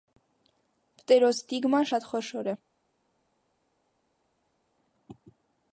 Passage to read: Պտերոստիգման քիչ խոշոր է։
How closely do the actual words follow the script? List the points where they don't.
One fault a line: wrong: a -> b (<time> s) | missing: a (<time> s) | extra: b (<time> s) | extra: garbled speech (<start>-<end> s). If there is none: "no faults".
wrong: քիչ -> շատ (1.9 s)